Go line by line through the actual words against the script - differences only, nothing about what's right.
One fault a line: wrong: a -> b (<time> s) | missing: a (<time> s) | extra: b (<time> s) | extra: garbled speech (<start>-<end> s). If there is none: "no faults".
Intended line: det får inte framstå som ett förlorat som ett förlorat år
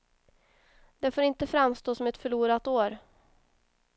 missing: som ett förlorat (2.7 s)